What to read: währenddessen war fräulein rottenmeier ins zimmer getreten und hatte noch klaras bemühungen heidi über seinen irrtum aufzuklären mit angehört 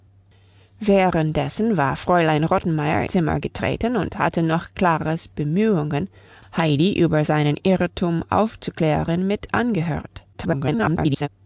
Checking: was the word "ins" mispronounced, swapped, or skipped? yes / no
yes